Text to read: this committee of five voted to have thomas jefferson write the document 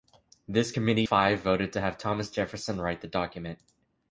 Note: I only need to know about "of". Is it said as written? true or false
false